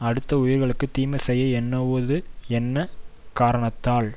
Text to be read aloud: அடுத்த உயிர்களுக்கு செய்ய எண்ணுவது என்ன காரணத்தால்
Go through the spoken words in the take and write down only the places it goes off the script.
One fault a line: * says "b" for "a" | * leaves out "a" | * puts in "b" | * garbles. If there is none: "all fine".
* puts in "தீமை"